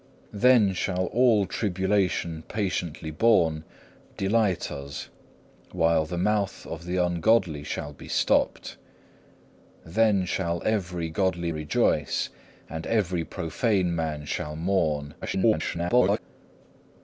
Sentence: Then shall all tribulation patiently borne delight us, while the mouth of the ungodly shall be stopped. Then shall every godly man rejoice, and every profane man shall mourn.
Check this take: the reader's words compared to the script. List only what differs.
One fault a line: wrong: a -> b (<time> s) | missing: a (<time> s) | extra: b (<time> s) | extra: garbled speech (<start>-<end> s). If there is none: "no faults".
missing: man (11.5 s)
extra: garbled speech (15.2-16.2 s)